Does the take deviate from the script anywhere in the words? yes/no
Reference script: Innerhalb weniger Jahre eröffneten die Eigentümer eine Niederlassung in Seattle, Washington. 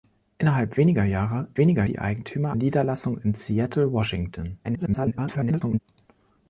yes